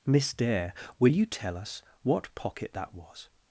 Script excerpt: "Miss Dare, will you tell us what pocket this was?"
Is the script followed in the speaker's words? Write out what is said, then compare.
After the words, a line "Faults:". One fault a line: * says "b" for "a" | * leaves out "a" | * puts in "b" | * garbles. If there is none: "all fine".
"Miss Dare, will you tell us what pocket that was?"
Faults:
* says "that" for "this"